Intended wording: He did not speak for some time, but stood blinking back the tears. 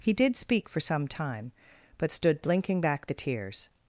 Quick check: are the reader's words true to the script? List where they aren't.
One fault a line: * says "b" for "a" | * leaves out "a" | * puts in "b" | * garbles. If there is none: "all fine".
* leaves out "not"